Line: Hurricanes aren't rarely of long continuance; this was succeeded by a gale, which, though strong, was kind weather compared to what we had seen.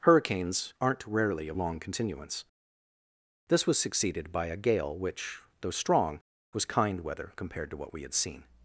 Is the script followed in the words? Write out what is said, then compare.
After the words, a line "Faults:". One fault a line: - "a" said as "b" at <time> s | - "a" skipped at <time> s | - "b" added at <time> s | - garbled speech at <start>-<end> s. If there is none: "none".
Hurricanes aren't rarely of long continuance; this was succeeded by a gale, which, though strong, was kind weather compared to what we had seen.
Faults:
none